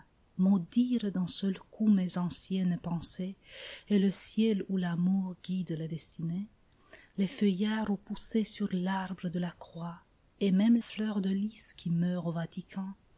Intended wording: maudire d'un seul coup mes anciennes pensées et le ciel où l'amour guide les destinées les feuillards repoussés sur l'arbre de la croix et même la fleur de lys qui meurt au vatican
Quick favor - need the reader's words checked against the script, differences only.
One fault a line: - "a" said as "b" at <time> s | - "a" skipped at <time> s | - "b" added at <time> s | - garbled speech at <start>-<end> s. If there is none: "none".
- "la" skipped at 10.8 s